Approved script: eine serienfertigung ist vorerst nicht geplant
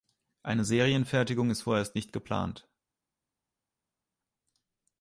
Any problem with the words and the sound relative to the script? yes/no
no